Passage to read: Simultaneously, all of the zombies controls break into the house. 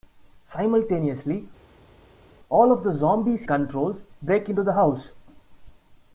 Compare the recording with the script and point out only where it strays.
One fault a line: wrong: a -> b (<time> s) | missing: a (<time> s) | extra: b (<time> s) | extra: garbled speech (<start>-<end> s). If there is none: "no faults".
no faults